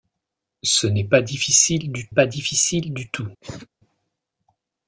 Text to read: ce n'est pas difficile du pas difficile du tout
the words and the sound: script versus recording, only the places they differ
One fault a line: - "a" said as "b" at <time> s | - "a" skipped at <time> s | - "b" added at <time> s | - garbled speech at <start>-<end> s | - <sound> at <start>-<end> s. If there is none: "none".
- cough at 3.4-3.7 s